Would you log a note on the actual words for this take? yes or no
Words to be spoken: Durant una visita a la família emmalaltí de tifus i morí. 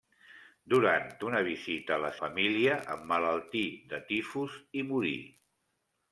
no